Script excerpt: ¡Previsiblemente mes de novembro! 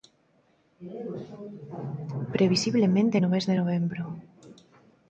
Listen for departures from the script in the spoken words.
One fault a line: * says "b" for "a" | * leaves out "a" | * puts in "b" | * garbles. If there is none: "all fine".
* puts in "no"